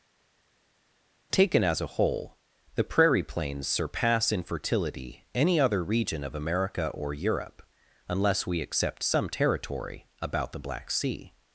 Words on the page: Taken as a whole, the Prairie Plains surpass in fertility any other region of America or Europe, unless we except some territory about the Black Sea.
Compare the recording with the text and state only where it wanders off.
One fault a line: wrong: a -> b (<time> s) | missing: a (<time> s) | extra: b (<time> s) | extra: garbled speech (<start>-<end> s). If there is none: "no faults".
no faults